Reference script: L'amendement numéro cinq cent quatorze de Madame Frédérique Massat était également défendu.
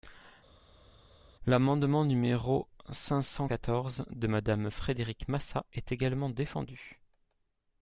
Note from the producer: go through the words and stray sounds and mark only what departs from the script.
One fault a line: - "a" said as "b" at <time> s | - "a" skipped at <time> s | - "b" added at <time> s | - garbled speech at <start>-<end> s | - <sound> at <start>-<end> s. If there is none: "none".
- "était" said as "est" at 5.7 s